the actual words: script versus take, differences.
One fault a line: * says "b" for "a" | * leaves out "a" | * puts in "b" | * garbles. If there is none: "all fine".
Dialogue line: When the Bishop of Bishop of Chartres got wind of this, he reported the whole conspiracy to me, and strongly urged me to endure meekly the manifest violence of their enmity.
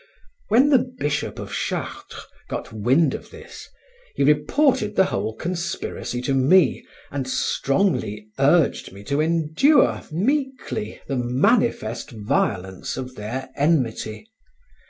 * leaves out "Bishop of"